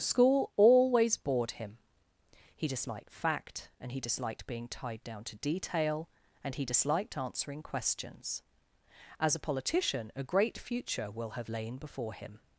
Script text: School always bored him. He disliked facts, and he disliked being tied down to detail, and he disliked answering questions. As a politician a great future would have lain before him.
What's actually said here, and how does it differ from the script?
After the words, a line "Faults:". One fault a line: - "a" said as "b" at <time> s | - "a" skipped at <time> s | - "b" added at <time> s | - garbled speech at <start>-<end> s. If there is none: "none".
School always bored him. He disliked fact, and he disliked being tied down to detail, and he disliked answering questions. As a politician a great future will have lain before him.
Faults:
- "facts" said as "fact" at 3.1 s
- "would" said as "will" at 11.1 s